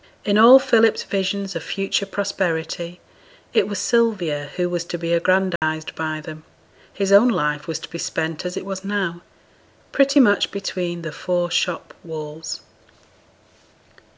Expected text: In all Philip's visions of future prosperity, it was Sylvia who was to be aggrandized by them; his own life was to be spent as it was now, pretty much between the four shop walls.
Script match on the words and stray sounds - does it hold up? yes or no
no